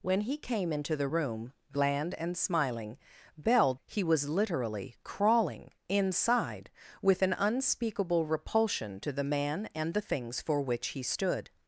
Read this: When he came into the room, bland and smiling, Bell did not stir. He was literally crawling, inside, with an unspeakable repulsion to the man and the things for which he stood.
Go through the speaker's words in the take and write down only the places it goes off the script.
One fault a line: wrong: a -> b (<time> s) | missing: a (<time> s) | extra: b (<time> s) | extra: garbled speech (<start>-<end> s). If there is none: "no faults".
missing: did not stir (3.7 s)